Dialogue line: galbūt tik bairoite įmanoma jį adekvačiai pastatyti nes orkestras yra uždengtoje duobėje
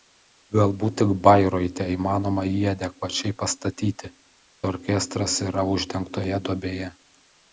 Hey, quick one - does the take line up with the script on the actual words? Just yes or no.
no